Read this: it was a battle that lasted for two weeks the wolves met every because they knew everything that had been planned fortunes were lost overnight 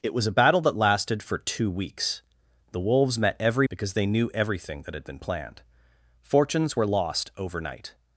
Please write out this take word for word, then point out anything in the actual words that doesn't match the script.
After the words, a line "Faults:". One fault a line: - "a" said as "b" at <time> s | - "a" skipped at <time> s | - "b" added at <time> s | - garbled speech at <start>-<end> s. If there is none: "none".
it was a battle that lasted for two weeks the wolves met every because they knew everything that had been planned fortunes were lost overnight
Faults:
none